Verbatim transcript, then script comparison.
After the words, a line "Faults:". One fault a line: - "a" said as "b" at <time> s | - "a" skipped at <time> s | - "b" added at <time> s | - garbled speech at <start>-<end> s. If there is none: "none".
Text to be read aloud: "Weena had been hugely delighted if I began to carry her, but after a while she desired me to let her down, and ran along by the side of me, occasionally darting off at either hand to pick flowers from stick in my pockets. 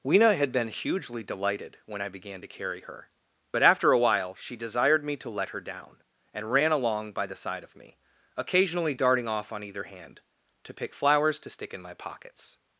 "Weena had been hugely delighted when I began to carry her, but after a while she desired me to let her down, and ran along by the side of me, occasionally darting off on either hand to pick flowers to stick in my pockets.
Faults:
- "if" said as "when" at 1.8 s
- "at" said as "on" at 9.5 s
- "from" said as "to" at 11.4 s